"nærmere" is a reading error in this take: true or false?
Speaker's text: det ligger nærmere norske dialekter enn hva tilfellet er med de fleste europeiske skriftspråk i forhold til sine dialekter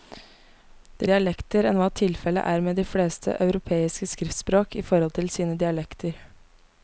true